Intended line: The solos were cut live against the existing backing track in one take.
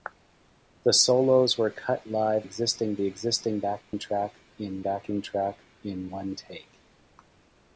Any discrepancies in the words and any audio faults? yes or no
yes